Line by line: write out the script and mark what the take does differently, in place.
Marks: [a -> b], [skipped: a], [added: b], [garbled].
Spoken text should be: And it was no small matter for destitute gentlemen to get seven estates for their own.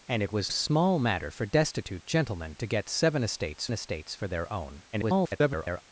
And it was [skipped: no] small matter for destitute gentlemen to get seven estates [added: estates] for their own. [garbled]